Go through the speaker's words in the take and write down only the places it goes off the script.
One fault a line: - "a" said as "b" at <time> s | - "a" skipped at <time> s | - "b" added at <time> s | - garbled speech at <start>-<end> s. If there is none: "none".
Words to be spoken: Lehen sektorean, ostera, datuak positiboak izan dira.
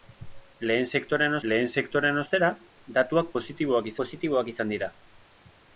- "lehen sektorean" added at 1.5 s
- "positiboak" added at 4.0 s